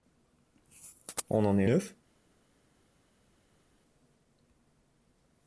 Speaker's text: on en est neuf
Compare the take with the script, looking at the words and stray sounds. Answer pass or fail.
pass